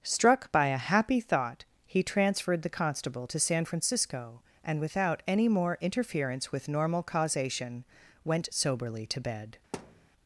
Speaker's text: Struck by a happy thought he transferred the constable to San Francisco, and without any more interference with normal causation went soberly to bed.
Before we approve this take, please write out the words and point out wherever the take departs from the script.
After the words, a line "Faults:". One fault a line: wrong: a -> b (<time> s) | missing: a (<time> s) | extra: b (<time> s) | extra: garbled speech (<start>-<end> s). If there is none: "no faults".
Struck by a happy thought he transferred the constable to San Francisco, and without any more interference with normal causation went soberly to bed.
Faults:
no faults